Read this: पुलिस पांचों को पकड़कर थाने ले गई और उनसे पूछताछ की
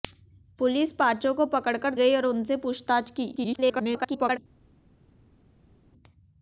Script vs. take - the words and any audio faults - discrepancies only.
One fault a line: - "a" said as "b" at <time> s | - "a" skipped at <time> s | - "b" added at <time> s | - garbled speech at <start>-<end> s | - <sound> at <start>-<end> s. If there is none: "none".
- "थाने ले" skipped at 1.9 s
- garbled speech at 3.4-4.4 s